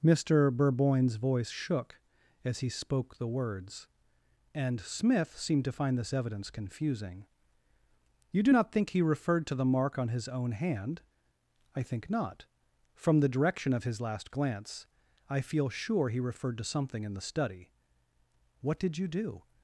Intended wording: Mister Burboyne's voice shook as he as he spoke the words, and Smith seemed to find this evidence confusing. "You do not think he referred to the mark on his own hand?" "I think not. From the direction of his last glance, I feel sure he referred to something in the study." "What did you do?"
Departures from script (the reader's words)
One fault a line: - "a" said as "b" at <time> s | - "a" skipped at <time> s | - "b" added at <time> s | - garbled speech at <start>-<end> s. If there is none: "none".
- "as he" skipped at 2.7 s